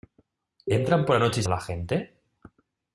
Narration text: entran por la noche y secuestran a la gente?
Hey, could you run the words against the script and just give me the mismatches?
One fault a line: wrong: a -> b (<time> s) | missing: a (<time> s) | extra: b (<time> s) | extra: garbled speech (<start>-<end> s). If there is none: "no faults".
missing: secuestran (1.4 s)